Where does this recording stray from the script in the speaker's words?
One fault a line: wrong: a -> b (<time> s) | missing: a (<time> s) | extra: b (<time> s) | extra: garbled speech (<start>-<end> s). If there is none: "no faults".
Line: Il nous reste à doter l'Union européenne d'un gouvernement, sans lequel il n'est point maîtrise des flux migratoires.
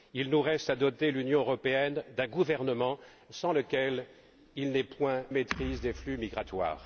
no faults